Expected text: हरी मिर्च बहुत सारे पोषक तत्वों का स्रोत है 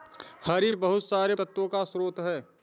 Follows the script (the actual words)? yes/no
no